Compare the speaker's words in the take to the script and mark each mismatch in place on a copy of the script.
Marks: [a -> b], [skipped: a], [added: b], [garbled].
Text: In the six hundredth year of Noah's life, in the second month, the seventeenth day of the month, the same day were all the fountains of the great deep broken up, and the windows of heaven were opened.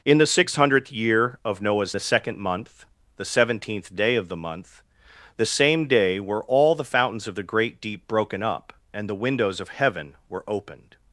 In the six hundredth year of Noah's [skipped: life, in] the second month, the seventeenth day of the month, the same day were all the fountains of the great deep broken up, and the windows of heaven were opened.